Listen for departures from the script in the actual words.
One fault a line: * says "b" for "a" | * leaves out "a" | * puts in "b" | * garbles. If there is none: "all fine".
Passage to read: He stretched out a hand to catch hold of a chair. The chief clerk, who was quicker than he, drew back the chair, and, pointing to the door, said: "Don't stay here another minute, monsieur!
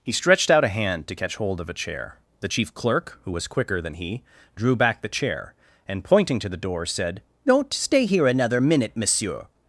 all fine